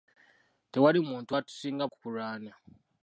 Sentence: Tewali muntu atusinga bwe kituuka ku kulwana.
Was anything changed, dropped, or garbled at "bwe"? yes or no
yes